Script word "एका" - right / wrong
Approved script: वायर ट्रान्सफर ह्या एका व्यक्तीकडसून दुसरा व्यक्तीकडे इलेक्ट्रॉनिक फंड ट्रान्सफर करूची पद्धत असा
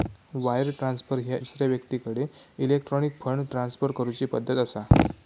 wrong